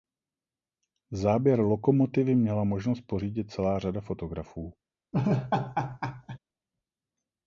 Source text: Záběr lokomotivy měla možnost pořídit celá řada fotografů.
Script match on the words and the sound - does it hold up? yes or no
no